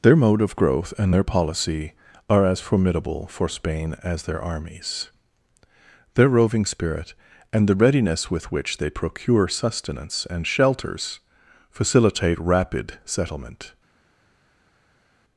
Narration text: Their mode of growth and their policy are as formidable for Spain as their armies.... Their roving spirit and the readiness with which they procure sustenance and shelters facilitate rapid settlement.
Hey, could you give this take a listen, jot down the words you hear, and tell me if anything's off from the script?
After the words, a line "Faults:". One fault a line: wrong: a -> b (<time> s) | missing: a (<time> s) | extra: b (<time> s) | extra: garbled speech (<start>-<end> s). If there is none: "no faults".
Their mode of growth and their policy are as formidable for Spain as their armies.... Their roving spirit and the readiness with which they procure sustenance and shelters facilitate rapid settlement.
Faults:
no faults